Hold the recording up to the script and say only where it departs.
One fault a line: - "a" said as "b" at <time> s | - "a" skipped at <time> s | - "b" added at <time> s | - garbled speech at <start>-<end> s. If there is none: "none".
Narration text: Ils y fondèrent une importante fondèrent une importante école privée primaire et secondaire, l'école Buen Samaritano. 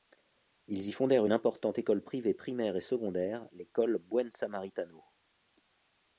- "fondèrent une importante" skipped at 1.8 s